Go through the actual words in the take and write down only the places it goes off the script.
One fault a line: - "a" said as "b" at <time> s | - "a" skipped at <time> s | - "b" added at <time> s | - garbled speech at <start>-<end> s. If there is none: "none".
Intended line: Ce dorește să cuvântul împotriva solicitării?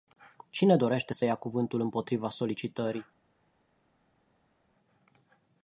- "Ce" said as "Cine" at 0.5 s
- "ia" added at 1.2 s